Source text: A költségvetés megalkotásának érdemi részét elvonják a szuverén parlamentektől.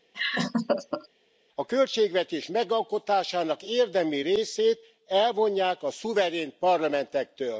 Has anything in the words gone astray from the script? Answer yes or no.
no